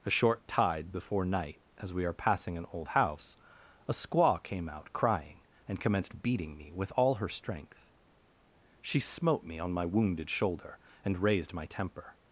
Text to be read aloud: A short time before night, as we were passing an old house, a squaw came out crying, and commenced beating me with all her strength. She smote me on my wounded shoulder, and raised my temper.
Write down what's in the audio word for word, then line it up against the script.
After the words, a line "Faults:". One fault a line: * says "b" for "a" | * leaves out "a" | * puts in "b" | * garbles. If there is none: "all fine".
A short tide before night, as we are passing an old house, a squaw came out crying, and commenced beating me with all her strength. She smote me on my wounded shoulder, and raised my temper.
Faults:
* says "tide" for "time"
* says "are" for "were"